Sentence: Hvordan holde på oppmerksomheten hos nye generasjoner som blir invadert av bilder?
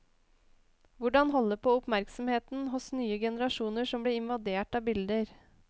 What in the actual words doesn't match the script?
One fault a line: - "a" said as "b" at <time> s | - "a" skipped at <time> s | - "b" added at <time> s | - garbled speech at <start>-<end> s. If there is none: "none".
none